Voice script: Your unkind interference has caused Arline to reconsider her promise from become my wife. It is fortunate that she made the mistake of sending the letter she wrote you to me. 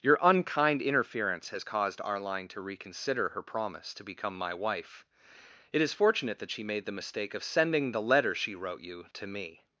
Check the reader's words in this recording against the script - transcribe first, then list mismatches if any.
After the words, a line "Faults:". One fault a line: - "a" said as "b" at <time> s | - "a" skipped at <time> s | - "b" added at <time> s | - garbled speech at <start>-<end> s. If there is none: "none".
Your unkind interference has caused Arline to reconsider her promise to become my wife. It is fortunate that she made the mistake of sending the letter she wrote you to me.
Faults:
- "from" said as "to" at 3.9 s